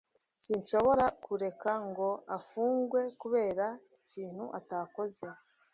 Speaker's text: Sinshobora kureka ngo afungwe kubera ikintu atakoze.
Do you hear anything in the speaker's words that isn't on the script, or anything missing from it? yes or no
no